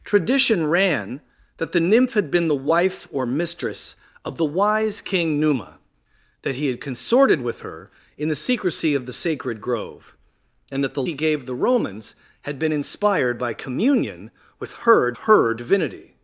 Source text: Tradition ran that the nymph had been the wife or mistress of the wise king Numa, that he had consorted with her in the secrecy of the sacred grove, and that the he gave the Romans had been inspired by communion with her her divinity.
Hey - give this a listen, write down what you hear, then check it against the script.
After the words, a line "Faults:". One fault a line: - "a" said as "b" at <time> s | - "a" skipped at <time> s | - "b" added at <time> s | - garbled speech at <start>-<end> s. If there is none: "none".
Tradition ran that the nymph had been the wife or mistress of the wise king Numa, that he had consorted with her in the secrecy of the sacred grove, and that the he gave the Romans had been inspired by communion with her her divinity.
Faults:
none